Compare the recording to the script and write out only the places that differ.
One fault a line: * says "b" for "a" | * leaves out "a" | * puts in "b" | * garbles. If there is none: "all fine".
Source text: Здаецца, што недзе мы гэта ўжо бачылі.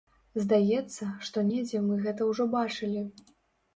all fine